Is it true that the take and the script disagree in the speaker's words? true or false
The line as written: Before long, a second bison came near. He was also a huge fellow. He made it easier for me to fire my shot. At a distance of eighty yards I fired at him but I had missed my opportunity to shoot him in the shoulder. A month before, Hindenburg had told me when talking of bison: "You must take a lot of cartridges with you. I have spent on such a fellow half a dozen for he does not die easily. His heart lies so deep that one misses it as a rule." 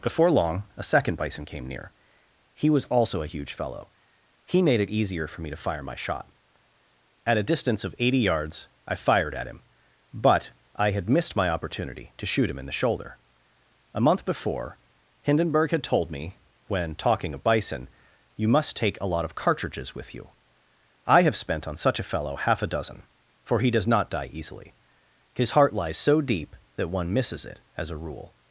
false